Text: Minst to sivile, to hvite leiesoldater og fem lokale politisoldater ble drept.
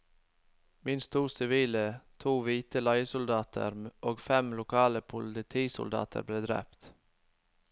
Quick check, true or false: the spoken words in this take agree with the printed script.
true